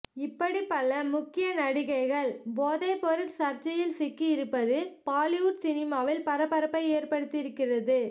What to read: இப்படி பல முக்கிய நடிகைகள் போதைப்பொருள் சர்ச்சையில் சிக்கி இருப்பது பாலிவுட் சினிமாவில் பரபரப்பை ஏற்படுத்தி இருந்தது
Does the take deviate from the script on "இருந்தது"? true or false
true